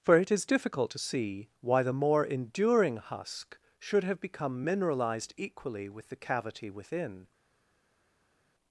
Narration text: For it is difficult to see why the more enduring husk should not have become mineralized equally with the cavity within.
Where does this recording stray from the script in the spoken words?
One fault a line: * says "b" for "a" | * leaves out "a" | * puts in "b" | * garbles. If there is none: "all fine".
* leaves out "not"